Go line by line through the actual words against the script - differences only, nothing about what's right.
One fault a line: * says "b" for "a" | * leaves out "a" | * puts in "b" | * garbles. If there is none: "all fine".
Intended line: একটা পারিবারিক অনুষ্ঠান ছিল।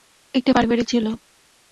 * leaves out "অনুষ্ঠান"